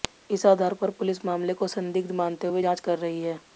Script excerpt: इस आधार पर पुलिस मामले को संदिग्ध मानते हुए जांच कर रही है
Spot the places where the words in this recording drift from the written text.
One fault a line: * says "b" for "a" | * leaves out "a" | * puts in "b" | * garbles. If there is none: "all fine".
all fine